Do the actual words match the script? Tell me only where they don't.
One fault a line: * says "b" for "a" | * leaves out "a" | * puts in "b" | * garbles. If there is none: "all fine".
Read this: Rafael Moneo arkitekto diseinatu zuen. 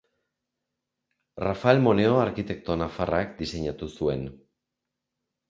* puts in "nafarrak"